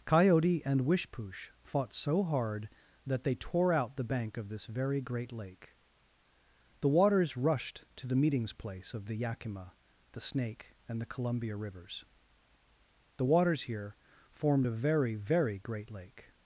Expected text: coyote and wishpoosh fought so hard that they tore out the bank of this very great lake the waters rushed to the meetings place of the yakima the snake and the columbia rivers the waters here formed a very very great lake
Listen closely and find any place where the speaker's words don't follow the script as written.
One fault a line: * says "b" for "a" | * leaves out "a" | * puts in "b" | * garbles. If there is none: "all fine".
all fine